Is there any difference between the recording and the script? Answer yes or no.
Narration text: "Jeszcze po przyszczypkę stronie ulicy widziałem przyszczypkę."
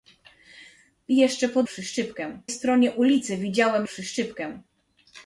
no